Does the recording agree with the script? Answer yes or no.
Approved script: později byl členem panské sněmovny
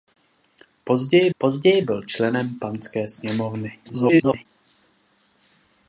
no